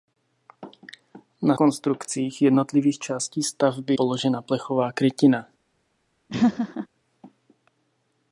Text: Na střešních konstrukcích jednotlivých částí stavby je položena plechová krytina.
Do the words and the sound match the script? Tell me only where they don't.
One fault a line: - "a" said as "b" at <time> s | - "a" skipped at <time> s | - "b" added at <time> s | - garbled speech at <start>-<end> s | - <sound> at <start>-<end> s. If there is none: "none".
- "střešních" skipped at 1.6 s
- "je" skipped at 4.0 s
- laugh at 6.3-6.9 s